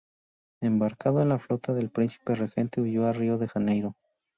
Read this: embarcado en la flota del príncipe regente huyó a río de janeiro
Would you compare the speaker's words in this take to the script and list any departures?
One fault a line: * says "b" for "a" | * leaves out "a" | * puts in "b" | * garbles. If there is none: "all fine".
all fine